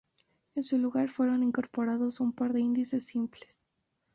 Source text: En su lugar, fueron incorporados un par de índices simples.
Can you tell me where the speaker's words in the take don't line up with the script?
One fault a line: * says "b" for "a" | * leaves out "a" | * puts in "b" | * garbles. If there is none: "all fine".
all fine